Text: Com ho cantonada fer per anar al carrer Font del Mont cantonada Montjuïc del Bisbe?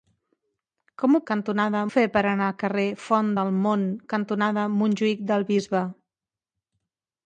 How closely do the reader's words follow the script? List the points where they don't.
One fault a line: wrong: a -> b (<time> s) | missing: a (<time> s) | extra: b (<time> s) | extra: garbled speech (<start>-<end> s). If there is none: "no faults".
no faults